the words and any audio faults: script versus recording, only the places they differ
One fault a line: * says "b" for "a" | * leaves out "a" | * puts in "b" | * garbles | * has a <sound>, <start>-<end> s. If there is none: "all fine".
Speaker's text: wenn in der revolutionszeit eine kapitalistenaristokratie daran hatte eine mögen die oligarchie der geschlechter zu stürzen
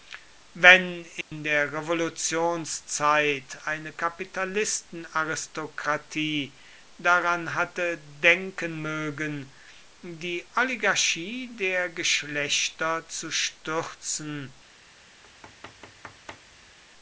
* has a dropout, 1.2-1.3 s
* says "denken" for "eine"
* has a thud, 15.2-16.8 s